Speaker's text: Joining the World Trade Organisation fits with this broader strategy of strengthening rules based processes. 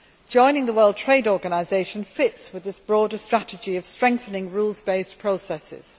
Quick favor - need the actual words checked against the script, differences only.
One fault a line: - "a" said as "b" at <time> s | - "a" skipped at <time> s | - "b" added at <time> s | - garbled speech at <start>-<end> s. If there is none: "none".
none